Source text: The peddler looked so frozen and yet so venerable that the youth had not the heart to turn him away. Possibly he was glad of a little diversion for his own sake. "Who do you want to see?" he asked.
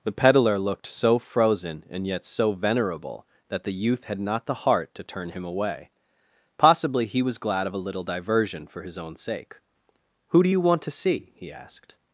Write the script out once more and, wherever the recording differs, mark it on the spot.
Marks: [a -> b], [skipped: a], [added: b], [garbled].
The peddler looked so frozen and yet so venerable that the youth had not the heart to turn him away. Possibly he was glad of a little diversion for his own sake. "Who do you want to see?" he asked.